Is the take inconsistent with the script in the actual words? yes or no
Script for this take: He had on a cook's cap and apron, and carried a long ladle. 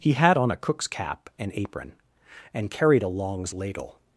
yes